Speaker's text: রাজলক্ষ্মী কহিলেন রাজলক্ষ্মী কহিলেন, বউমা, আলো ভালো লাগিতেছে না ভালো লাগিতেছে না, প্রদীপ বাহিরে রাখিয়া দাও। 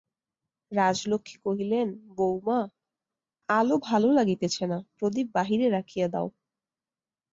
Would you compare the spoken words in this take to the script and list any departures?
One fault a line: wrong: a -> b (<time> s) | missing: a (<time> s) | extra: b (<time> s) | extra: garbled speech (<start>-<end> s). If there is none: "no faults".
missing: রাজলক্ষ্মী কহিলেন (1.9 s)
missing: ভালো লাগিতেছে না (4.8 s)